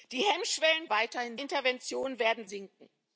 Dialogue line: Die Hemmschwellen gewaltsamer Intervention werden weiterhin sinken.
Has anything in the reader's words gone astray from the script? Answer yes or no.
yes